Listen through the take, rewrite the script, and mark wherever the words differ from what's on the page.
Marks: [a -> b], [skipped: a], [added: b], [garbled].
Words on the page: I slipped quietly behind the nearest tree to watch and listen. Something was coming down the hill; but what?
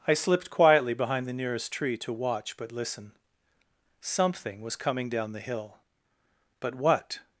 I slipped quietly behind the nearest tree to watch [and -> but] listen. Something was coming down the hill; but what?